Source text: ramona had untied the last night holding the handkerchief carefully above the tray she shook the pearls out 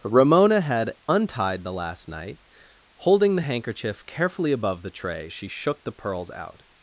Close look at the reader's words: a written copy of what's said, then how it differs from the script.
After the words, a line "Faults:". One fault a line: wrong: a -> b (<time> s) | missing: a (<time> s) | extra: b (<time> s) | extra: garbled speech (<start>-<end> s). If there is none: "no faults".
ramona had untied the last night holding the handkerchief carefully above the tray she shook the pearls out
Faults:
no faults